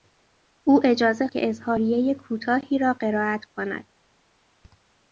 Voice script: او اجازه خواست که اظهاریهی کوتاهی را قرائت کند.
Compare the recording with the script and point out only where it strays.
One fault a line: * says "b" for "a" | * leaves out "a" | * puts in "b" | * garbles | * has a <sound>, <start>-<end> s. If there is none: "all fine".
* leaves out "خواست"